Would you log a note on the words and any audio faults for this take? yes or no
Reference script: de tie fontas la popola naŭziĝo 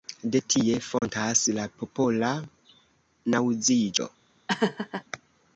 yes